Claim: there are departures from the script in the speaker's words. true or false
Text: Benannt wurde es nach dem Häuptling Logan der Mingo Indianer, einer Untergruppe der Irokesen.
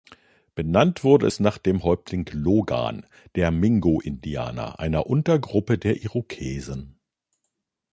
false